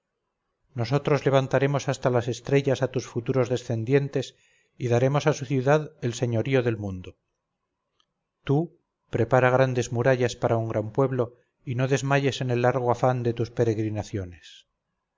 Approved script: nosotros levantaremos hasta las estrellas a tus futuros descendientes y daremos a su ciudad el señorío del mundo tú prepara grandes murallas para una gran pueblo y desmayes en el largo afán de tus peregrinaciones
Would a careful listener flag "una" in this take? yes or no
yes